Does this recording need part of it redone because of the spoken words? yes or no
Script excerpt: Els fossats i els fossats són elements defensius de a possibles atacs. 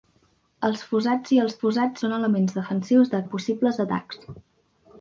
no